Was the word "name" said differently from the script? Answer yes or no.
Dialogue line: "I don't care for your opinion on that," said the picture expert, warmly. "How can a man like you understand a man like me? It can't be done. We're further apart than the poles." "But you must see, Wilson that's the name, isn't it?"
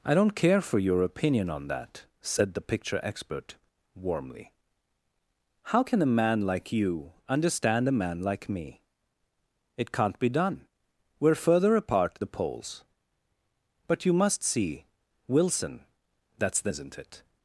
yes